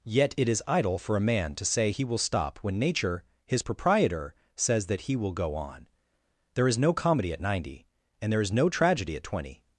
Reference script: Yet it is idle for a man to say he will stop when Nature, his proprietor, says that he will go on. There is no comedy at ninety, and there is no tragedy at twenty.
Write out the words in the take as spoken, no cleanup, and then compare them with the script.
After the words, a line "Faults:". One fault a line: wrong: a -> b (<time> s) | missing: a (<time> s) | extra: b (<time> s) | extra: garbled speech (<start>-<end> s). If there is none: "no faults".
Yet it is idle for a man to say he will stop when Nature, his proprietor, says that he will go on. There is no comedy at ninety, and there is no tragedy at twenty.
Faults:
no faults